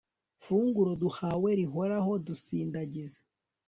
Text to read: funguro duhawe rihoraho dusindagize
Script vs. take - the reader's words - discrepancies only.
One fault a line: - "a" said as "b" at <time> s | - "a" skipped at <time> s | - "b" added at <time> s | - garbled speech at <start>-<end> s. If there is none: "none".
none